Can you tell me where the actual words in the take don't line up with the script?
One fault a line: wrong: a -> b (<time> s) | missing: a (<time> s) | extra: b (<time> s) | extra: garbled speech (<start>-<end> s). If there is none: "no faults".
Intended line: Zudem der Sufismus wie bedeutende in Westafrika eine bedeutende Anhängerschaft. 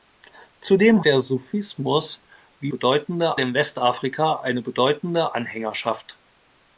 no faults